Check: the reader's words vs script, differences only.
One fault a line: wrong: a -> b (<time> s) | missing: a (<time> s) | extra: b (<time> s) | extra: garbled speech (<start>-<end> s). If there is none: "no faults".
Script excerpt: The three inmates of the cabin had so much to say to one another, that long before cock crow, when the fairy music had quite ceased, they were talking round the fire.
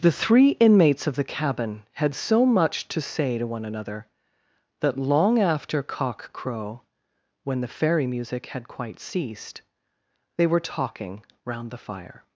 wrong: before -> after (5.4 s)